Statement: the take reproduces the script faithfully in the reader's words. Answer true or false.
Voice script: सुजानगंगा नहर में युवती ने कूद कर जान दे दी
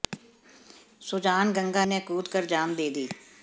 false